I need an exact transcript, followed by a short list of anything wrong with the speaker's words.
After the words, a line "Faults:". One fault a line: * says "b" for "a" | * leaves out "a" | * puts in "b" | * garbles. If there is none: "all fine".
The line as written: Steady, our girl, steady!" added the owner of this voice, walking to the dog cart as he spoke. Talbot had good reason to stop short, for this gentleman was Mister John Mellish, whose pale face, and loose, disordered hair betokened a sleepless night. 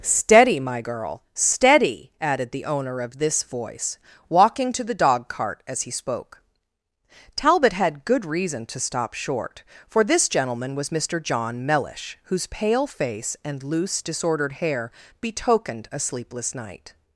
Steady, my girl, steady!" added the owner of this voice, walking to the dog cart as he spoke. Talbot had good reason to stop short, for this gentleman was Mister John Mellish, whose pale face, and loose, disordered hair betokened a sleepless night.
Faults:
* says "my" for "our"